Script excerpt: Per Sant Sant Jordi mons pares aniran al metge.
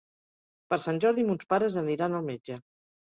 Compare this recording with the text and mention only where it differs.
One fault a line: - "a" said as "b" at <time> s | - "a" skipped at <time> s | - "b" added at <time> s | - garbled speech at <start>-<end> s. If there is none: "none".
- "Sant" skipped at 1.0 s